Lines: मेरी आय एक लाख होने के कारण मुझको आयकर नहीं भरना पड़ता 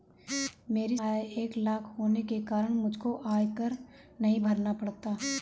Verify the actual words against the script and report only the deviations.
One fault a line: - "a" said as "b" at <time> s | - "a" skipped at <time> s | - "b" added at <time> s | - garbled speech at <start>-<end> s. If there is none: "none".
none